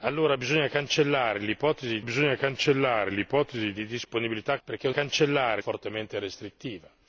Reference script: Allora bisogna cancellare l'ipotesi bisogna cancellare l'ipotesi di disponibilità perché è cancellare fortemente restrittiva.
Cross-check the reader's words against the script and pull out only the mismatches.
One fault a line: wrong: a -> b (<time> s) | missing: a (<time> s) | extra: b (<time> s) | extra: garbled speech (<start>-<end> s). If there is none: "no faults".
no faults